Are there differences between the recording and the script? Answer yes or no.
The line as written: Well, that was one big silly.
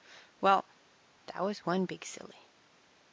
no